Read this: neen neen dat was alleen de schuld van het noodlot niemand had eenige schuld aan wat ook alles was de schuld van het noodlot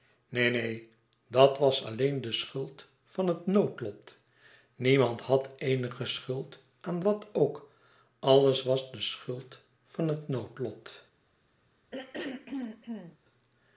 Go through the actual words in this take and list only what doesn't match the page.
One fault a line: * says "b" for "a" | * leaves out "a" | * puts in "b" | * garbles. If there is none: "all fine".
all fine